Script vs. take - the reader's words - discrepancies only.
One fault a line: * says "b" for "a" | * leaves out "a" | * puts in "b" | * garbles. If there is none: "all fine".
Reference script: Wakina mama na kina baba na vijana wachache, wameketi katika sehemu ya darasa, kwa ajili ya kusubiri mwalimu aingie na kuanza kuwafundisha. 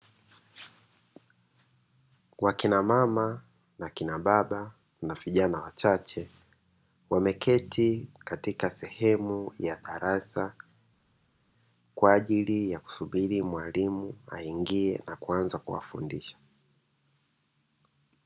all fine